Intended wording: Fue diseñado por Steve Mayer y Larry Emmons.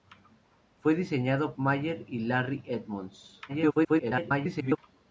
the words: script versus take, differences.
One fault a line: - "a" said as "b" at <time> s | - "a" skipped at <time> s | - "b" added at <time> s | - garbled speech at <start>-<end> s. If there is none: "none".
- "por Steve" skipped at 1.6 s
- garbled speech at 3.5-4.8 s